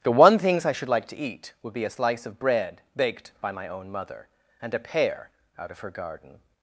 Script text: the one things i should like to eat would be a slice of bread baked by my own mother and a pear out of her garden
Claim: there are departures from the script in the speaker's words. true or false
false